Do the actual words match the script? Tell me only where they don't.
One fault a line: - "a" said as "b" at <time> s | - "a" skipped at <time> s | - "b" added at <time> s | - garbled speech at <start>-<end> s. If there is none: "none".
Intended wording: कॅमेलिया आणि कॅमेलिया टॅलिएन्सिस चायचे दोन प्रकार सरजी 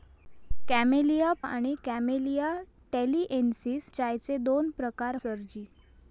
none